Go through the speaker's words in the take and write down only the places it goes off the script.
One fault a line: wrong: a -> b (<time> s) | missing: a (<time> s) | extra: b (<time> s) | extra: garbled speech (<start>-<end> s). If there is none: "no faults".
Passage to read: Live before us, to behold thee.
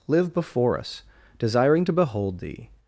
extra: desiring (1.4 s)